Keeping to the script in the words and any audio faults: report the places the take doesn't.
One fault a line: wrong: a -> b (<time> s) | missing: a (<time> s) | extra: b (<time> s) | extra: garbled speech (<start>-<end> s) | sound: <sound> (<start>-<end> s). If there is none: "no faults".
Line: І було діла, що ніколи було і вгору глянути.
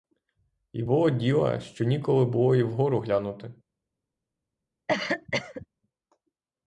sound: cough (4.9-5.7 s)